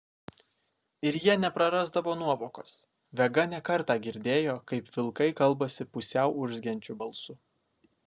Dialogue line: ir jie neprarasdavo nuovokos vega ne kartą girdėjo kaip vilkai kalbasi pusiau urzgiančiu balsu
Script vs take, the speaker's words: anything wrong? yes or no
no